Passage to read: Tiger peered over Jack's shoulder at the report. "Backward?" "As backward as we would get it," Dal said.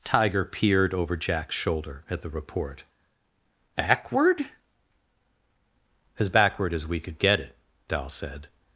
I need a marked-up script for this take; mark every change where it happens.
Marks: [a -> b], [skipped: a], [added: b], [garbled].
Tiger peered over Jack's shoulder at the report. "Backward?" "As backward as we [would -> could] get it," Dal said.